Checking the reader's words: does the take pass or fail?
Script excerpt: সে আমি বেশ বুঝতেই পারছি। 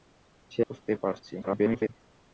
fail